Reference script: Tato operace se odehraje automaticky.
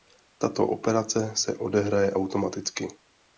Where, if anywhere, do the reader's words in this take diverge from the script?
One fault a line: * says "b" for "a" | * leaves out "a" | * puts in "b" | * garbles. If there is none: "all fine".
all fine